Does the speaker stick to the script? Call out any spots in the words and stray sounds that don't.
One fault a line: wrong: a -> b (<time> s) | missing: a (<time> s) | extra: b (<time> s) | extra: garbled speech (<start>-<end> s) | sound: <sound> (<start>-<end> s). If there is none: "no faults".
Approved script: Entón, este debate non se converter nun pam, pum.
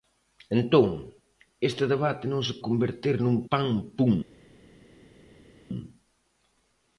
no faults